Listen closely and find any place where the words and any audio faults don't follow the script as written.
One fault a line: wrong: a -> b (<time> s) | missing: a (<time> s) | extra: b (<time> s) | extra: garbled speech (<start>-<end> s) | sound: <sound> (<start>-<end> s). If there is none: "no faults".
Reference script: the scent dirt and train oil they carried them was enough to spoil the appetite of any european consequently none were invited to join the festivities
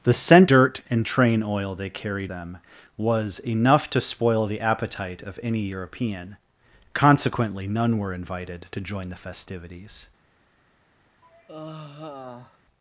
sound: sigh (11.2-12.6 s)